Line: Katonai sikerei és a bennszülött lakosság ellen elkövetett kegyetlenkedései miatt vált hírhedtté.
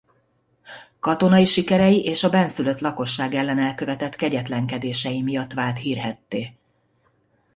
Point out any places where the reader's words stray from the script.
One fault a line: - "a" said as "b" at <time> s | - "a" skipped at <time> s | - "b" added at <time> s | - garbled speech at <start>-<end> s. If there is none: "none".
none